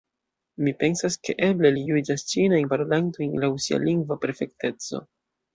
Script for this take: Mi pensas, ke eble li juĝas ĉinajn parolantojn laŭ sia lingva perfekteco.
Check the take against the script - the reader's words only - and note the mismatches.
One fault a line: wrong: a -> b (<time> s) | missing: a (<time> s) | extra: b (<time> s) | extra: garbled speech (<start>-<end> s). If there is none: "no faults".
no faults